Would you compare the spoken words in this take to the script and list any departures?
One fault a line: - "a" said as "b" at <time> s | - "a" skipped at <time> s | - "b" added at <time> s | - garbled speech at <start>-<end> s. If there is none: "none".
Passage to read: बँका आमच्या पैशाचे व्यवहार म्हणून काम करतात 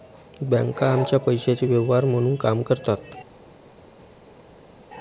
none